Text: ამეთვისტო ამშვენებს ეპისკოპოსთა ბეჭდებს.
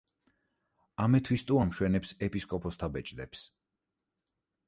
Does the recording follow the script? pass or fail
pass